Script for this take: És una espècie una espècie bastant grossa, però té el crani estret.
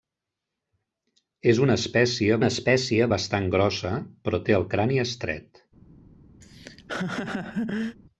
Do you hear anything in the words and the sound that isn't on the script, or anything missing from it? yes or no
yes